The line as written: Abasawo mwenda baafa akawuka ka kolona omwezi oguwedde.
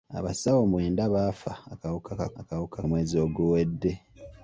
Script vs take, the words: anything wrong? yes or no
yes